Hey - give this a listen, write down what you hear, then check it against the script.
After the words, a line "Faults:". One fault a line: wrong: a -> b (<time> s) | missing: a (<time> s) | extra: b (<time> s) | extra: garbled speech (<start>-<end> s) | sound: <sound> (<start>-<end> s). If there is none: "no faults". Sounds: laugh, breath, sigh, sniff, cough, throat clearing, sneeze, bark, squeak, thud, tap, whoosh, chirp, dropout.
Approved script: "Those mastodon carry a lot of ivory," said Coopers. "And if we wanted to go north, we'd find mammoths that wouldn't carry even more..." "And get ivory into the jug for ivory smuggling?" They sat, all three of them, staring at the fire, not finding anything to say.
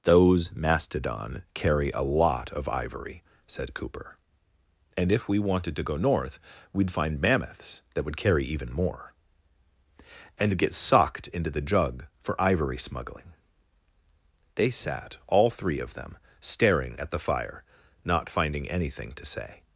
"Those mastodon carry a lot of ivory," said Cooper. "And if we wanted to go north, we'd find mammoths that would carry even more..." "And get socked into the jug for ivory smuggling?" They sat, all three of them, staring at the fire, not finding anything to say.
Faults:
wrong: Coopers -> Cooper (3.7 s)
wrong: wouldn't -> would (8.0 s)
wrong: ivory -> socked (10.7 s)